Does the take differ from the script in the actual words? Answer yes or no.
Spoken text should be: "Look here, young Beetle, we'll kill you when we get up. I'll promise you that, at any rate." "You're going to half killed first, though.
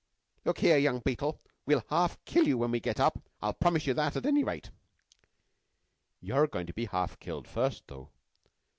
yes